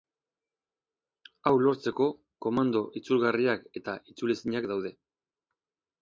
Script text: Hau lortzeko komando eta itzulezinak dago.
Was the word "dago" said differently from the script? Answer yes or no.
yes